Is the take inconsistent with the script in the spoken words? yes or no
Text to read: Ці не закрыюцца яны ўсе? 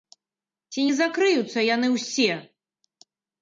no